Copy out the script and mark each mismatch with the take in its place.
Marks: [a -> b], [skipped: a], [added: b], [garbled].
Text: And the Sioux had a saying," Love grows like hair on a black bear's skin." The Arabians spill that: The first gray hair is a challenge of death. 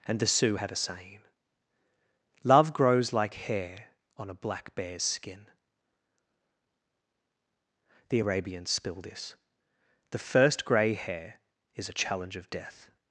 And the Sioux had a saying," Love grows like hair on a black bear's skin." The Arabians spill [that: -> this] The first gray hair is a challenge of death.